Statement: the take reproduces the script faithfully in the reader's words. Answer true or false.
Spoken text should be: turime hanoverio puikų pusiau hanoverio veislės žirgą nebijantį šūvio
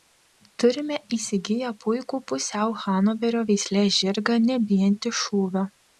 false